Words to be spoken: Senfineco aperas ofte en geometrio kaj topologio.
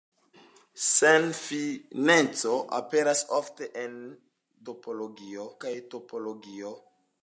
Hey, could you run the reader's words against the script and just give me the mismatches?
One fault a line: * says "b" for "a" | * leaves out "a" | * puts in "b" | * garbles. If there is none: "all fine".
* says "topologio" for "geometrio"